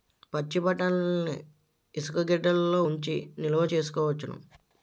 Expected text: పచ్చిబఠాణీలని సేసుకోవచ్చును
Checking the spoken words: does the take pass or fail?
fail